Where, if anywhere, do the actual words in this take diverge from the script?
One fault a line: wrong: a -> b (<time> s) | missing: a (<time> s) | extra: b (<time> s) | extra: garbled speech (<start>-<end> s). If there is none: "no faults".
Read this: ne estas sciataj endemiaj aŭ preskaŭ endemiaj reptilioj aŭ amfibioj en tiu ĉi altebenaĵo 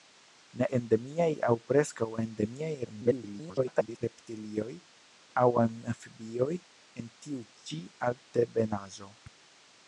missing: estas sciataj (0.7 s)
extra: garbled speech (2.8-4.0 s)